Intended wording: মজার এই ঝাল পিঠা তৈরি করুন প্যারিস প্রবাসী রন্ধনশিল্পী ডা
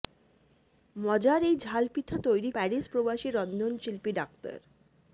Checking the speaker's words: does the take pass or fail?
fail